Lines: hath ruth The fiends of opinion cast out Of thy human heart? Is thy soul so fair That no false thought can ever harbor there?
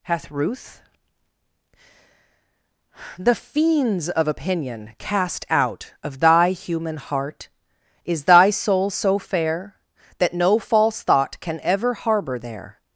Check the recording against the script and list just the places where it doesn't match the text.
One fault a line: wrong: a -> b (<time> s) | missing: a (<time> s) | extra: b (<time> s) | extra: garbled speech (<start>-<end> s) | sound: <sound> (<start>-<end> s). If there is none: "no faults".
no faults